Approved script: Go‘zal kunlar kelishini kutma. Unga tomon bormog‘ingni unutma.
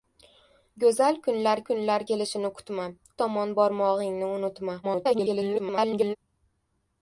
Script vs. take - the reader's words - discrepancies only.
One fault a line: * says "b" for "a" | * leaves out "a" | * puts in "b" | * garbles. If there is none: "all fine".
* puts in "kunlar"
* leaves out "Unga"
* garbles